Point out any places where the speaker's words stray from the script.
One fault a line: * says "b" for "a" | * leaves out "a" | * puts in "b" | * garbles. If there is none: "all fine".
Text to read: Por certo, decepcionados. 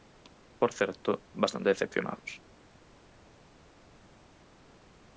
* puts in "bastante"